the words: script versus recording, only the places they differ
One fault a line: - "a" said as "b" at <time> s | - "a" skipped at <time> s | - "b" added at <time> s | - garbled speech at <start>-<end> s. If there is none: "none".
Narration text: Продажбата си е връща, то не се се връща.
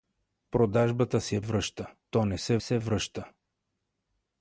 none